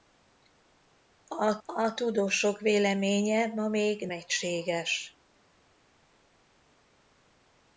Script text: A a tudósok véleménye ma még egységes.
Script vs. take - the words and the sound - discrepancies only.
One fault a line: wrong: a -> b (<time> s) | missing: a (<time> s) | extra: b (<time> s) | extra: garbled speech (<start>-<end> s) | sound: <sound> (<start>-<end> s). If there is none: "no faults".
no faults